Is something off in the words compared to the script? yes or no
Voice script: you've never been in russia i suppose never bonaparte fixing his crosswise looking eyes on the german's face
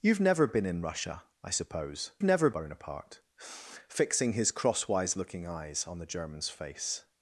no